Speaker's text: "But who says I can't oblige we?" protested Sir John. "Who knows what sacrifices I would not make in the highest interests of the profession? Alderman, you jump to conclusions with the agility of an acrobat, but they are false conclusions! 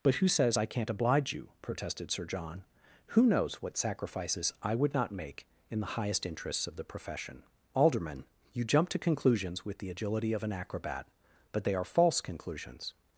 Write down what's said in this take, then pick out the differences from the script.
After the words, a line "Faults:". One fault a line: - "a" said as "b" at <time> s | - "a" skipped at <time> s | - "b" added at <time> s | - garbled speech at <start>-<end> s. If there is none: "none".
"But who says I can't oblige you?" protested Sir John. "Who knows what sacrifices I would not make in the highest interests of the profession? Alderman, you jump to conclusions with the agility of an acrobat, but they are false conclusions!
Faults:
- "we" said as "you" at 1.3 s